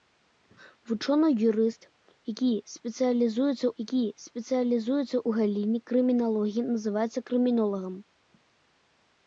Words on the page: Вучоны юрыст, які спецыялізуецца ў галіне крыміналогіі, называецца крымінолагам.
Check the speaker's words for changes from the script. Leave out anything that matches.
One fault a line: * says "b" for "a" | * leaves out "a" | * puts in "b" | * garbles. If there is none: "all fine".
* puts in "які спецыялізуецца"